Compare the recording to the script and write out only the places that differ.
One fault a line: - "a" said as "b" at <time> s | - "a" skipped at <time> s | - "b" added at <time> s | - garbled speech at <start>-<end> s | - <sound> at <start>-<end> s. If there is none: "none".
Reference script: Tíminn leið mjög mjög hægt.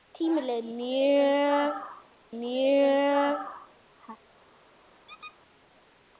- squeak at 5.1-5.4 s